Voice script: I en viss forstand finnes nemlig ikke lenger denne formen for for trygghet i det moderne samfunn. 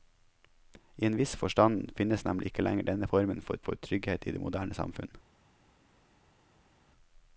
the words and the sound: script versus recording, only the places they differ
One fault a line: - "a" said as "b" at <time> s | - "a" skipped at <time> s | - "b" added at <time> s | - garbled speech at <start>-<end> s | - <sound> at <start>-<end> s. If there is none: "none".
none